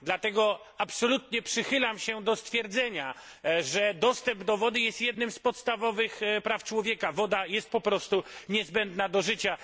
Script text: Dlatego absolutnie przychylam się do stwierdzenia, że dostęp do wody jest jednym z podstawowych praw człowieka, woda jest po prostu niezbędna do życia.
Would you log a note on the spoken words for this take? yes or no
no